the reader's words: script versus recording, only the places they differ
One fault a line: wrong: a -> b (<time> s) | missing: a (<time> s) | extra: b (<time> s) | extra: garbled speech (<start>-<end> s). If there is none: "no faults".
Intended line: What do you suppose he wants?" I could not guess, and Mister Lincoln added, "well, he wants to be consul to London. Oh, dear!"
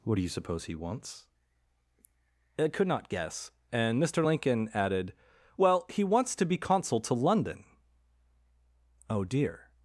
no faults